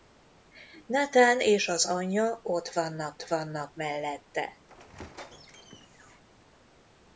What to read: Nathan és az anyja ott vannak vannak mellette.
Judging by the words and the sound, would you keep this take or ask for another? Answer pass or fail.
fail